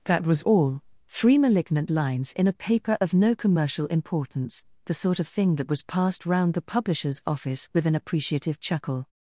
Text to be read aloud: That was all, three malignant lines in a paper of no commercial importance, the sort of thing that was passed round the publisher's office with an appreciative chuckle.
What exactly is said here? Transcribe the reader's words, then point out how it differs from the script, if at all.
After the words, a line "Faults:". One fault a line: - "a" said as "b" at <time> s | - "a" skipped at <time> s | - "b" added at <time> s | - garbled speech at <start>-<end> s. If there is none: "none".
That was all, three malignant lines in a paper of no commercial importance, the sort of thing that was passed round the publisher's office with an appreciative chuckle.
Faults:
none